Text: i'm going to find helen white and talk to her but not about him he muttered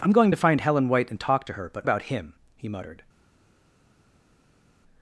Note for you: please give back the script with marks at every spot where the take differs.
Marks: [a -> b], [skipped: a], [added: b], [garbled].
i'm going to find helen white and talk to her but [skipped: not] about him he muttered